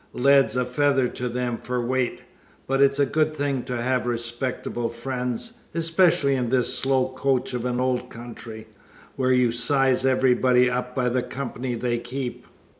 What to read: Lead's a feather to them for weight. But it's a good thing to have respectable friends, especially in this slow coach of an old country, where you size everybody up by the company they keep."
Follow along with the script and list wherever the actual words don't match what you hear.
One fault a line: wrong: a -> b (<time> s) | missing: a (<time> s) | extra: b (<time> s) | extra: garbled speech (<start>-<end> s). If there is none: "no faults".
no faults